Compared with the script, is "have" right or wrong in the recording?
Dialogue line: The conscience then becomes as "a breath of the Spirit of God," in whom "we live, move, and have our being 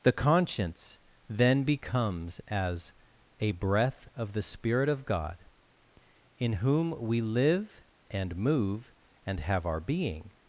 right